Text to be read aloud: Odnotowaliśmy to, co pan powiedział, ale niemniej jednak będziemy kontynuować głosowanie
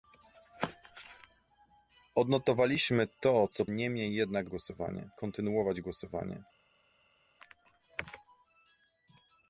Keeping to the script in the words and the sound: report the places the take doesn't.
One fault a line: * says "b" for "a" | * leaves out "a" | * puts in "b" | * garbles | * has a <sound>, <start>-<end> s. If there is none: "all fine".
* leaves out "pan powiedział ale"
* says "głosowanie" for "będziemy"